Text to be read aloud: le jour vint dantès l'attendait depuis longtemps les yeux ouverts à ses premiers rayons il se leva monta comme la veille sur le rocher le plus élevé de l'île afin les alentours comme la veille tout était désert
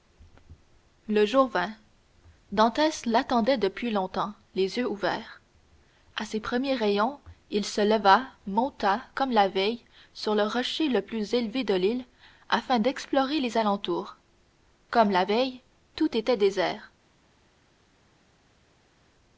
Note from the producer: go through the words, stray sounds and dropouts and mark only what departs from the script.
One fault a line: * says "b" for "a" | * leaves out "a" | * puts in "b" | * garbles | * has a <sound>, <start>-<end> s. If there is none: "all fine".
* puts in "d'explorer"